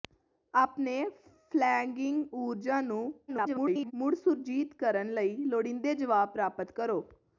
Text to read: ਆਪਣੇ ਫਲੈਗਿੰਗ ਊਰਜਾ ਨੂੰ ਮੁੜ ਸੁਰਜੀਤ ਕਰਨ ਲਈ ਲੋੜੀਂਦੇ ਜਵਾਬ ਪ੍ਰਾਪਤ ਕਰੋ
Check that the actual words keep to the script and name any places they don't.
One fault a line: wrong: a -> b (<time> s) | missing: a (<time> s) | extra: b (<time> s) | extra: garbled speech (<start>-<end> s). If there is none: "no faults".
extra: garbled speech (3.3-3.9 s)